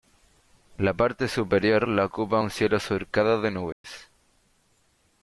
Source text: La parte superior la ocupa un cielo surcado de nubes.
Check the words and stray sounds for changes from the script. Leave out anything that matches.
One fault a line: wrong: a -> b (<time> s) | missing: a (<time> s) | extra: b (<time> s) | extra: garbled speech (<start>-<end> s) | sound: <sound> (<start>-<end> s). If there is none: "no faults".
sound: dropout (3.7-3.8 s)